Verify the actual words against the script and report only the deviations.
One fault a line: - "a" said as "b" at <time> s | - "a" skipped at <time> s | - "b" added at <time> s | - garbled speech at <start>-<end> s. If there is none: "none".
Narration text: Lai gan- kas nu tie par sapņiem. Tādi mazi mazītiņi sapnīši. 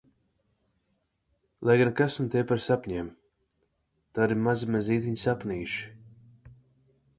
none